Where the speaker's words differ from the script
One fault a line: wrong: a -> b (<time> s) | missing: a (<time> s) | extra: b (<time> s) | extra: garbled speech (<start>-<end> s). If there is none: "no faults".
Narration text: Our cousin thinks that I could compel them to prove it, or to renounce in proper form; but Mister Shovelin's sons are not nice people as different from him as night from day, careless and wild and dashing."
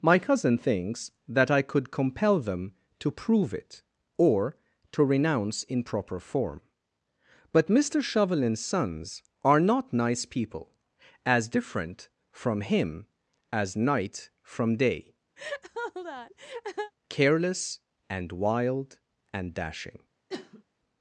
wrong: Our -> My (0.0 s)